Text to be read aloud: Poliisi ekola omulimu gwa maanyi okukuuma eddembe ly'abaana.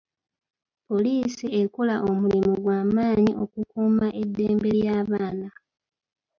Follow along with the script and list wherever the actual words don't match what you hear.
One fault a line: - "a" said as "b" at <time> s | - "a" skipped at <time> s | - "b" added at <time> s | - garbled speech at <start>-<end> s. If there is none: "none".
none